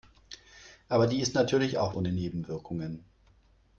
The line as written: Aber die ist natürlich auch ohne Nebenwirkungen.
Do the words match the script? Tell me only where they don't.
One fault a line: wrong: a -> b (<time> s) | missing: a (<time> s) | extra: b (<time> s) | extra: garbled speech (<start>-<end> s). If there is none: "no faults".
no faults